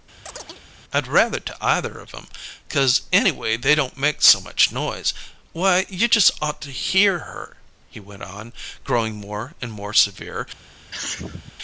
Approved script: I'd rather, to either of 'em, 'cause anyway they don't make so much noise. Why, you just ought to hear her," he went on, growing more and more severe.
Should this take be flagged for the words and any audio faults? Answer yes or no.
yes